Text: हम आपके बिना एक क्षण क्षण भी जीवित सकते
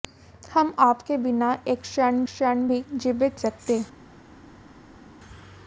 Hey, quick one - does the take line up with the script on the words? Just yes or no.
yes